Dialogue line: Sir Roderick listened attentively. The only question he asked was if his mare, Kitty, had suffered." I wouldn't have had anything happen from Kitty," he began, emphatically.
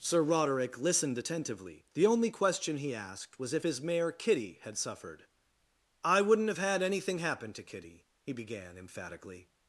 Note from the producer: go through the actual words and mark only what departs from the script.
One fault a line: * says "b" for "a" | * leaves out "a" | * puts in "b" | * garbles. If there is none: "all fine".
* says "to" for "from"